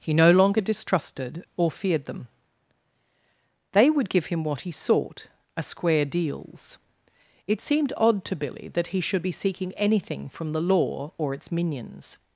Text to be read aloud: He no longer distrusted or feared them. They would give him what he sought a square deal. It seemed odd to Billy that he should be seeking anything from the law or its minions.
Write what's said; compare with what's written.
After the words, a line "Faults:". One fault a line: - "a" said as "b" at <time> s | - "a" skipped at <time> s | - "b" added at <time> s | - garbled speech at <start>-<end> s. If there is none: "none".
He no longer distrusted or feared them. They would give him what he sought a square deals. It seemed odd to Billy that he should be seeking anything from the law or its minions.
Faults:
- "deal" said as "deals" at 6.0 s